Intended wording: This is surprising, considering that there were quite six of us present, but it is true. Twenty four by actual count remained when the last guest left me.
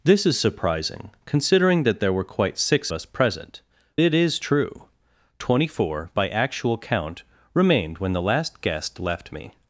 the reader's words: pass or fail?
fail